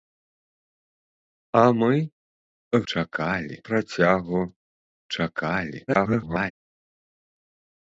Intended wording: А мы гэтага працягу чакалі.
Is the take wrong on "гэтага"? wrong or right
wrong